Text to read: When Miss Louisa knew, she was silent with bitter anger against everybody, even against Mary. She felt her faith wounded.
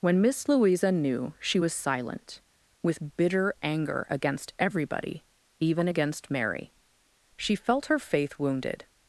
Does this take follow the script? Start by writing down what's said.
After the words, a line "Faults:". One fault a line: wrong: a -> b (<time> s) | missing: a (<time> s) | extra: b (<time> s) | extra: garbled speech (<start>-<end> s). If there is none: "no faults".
When Miss Louisa knew, she was silent with bitter anger against everybody, even against Mary. She felt her faith wounded.
Faults:
no faults